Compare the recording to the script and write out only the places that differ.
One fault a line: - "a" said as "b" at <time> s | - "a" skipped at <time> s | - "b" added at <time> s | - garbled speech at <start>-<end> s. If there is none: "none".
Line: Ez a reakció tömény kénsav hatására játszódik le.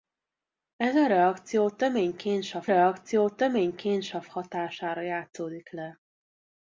- "reakció tömény kénsav" added at 2.7 s